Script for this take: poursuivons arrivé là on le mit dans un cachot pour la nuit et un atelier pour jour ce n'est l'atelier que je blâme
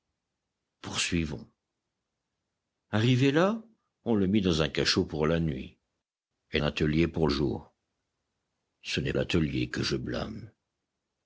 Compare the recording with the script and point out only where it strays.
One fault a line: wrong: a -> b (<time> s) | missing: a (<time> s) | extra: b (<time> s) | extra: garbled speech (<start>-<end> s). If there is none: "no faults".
no faults